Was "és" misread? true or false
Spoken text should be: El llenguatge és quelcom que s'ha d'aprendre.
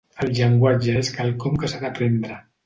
false